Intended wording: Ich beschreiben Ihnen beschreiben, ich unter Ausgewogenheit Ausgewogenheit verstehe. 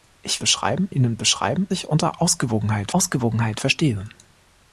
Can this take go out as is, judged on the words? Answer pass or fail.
pass